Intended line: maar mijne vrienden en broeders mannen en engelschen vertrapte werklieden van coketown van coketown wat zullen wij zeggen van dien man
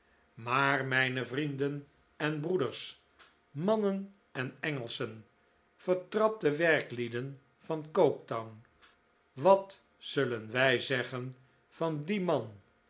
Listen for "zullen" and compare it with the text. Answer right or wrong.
right